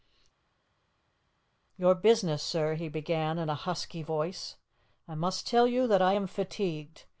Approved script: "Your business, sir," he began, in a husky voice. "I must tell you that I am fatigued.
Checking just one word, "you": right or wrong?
right